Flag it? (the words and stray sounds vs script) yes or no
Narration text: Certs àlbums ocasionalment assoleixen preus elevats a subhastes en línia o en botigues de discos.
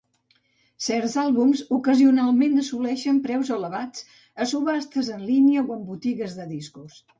no